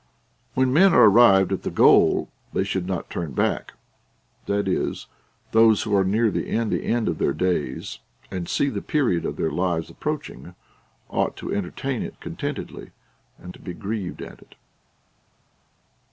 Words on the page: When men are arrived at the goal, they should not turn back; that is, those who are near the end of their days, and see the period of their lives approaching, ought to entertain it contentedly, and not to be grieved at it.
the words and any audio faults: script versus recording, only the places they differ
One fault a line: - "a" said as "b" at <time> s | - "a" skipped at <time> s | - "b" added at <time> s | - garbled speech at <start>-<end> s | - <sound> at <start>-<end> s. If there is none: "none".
- "the end" added at 6.7 s
- "not" skipped at 13.5 s